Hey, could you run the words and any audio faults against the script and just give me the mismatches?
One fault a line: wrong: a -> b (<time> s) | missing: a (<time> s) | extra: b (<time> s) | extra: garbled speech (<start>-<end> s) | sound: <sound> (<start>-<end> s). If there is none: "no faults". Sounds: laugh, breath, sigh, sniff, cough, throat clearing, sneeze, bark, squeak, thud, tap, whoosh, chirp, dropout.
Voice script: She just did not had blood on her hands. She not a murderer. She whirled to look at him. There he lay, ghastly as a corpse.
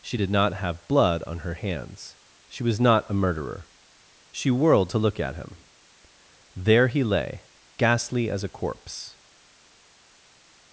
missing: just (0.2 s)
wrong: had -> have (0.5 s)
extra: was (2.6 s)